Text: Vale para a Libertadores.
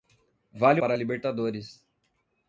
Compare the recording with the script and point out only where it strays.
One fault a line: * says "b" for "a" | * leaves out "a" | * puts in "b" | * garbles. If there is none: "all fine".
all fine